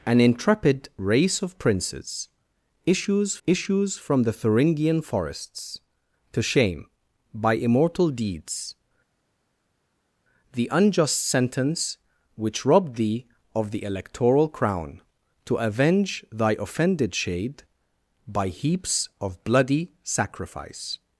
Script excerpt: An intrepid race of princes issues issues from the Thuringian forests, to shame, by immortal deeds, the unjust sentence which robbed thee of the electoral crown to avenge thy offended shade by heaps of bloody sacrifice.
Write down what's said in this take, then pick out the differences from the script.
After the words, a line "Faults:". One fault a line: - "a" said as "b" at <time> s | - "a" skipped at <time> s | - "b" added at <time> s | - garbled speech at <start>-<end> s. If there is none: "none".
An intrepid race of princes issues issues from the Thuringian forests, to shame, by immortal deeds, the unjust sentence which robbed thee of the electoral crown to avenge thy offended shade by heaps of bloody sacrifice.
Faults:
none